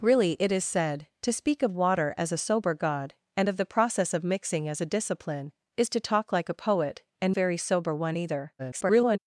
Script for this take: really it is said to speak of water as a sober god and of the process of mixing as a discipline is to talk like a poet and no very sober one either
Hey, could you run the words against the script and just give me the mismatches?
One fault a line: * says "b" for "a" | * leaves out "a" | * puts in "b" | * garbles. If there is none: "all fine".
* leaves out "no"
* garbles